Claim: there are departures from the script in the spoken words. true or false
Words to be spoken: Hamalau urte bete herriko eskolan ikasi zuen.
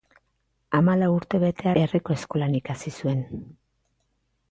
false